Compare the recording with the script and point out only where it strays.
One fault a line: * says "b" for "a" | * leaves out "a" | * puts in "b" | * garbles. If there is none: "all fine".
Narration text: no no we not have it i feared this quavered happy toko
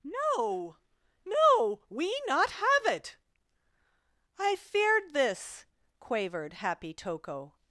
all fine